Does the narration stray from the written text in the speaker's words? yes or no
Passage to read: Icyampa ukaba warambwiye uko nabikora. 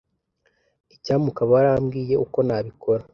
no